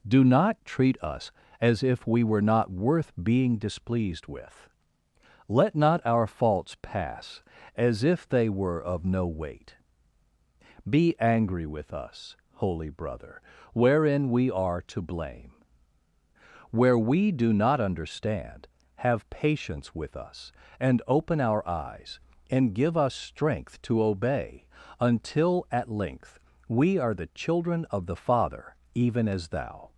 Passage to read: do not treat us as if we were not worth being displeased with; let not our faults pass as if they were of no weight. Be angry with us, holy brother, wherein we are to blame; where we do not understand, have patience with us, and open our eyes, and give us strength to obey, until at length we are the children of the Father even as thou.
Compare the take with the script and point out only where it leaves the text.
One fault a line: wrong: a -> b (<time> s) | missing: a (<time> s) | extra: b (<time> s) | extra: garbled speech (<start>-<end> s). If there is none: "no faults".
no faults